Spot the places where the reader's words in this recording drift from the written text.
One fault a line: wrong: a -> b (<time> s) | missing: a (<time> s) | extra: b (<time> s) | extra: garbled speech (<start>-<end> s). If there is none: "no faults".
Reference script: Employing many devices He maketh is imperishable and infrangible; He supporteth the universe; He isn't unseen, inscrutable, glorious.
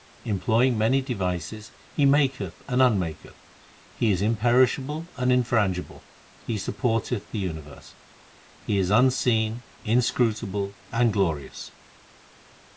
extra: and unmaketh He (2.7 s)
wrong: isn't -> is (8.8 s)
extra: and (10.9 s)